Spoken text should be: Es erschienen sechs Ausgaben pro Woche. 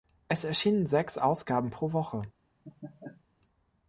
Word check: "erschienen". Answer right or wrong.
right